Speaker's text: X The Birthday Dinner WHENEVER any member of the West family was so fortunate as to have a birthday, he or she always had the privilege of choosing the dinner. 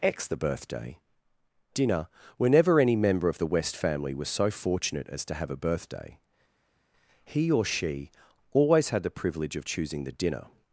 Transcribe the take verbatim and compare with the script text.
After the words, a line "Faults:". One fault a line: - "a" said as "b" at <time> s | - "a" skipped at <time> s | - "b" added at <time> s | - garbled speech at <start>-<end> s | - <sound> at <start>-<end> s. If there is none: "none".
X The Birthday Dinner WHENEVER any member of the West family was so fortunate as to have a birthday, he or she always had the privilege of choosing the dinner.
Faults:
none